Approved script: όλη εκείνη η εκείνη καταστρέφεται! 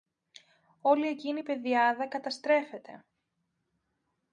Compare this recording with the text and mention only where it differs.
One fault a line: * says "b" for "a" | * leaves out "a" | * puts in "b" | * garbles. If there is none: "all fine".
* says "πεδιάδα" for "εκείνη"